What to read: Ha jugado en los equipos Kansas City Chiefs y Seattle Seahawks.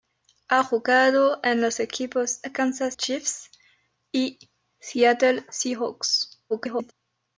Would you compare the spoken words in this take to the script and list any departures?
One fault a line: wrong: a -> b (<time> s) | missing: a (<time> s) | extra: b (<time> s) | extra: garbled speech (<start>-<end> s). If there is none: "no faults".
missing: City (3.0 s)
extra: garbled speech (6.5-6.9 s)